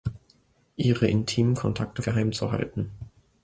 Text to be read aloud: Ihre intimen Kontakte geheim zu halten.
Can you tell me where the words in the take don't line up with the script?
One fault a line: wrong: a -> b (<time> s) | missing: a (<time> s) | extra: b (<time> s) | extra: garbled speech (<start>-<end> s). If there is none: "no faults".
no faults